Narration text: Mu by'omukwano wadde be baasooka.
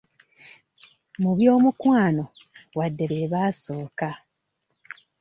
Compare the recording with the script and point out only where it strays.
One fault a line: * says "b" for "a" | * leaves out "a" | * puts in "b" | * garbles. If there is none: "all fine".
all fine